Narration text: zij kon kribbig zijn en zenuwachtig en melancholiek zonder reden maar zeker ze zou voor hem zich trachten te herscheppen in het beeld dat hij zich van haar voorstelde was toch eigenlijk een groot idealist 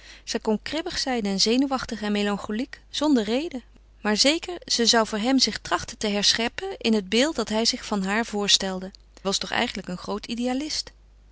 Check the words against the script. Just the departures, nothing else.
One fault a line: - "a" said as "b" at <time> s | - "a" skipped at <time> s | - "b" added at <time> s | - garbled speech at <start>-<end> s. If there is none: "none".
none